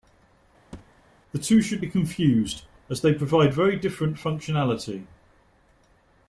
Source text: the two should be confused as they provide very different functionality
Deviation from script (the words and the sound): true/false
true